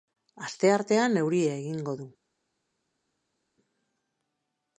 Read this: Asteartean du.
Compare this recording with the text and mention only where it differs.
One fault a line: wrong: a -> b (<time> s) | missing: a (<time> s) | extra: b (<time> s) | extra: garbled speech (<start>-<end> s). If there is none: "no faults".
extra: euria egingo (1.2 s)